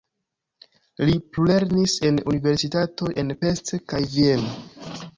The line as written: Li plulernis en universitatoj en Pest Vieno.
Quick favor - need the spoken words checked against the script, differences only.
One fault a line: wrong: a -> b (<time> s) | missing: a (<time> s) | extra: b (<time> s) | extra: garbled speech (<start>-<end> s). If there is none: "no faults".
extra: kaj (3.9 s)